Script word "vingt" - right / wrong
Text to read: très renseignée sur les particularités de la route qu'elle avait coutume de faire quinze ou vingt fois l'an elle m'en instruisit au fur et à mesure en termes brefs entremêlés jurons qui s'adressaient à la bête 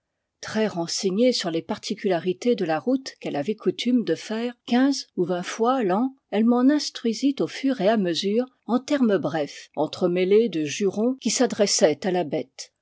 right